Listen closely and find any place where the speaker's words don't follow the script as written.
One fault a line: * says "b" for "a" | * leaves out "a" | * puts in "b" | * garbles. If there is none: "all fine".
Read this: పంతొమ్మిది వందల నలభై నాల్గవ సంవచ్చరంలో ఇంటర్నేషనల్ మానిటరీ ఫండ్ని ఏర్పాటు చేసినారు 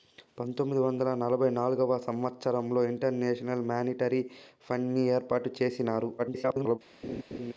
* garbles